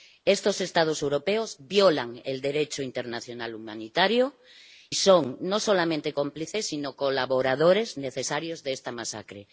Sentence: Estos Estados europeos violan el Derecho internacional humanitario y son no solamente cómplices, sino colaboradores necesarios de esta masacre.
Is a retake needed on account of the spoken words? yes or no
yes